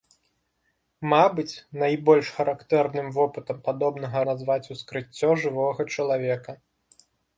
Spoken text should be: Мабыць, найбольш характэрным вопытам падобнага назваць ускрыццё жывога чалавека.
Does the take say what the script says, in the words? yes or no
yes